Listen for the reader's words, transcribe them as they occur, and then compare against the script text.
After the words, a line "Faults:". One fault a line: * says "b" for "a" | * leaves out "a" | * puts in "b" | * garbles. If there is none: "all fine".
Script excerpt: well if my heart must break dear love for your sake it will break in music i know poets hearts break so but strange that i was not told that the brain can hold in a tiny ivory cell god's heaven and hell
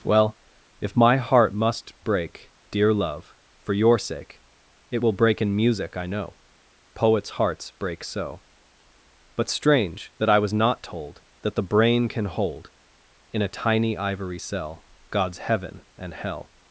well if my heart must break dear love for your sake it will break in music i know poets hearts break so but strange that i was not told that the brain can hold in a tiny ivory cell god's heaven and hell
Faults:
all fine